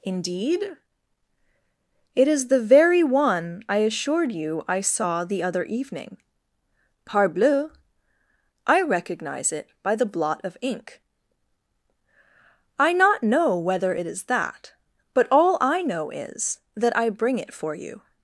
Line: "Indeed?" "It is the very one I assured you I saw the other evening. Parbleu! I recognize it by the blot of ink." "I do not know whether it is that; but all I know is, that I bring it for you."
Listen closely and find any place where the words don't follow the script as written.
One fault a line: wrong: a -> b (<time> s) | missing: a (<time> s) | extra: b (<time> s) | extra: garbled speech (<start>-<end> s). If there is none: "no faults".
missing: do (12.9 s)